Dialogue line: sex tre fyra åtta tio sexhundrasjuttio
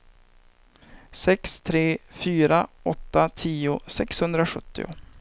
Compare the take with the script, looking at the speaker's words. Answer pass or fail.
pass